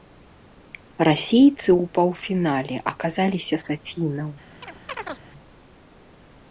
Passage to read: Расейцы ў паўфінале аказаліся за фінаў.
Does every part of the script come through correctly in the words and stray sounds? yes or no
no